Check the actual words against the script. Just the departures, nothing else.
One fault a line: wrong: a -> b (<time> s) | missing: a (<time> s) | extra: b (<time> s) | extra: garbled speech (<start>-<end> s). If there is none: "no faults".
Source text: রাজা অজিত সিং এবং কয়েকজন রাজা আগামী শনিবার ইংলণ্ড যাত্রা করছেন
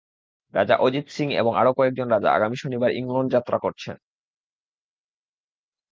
extra: আরও (1.6 s)